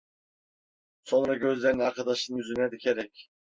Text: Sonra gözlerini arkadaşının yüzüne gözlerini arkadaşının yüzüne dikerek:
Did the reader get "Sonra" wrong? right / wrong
right